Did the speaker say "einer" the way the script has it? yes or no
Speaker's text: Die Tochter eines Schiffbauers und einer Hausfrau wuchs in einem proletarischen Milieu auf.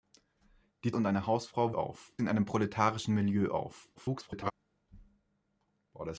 yes